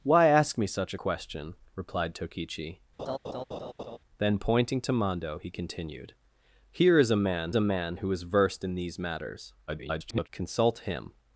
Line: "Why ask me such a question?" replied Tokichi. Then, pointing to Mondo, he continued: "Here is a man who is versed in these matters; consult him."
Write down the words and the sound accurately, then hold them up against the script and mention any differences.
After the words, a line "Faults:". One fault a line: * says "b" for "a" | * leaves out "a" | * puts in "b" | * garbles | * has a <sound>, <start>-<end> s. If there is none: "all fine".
"Why ask me such question?" replied Tokichi. Then, pointing to Mondo, he continued: "Here is a man a man who is versed in these matters; [garbled] consult him."
Faults:
* leaves out "a"
* has a laugh, 3.0-4.0 s
* puts in "a man"
* garbles